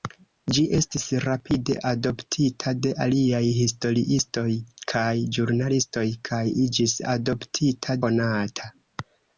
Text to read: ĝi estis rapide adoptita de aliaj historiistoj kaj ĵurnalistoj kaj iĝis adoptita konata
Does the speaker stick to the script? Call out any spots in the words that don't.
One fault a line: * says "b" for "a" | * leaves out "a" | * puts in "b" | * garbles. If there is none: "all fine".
all fine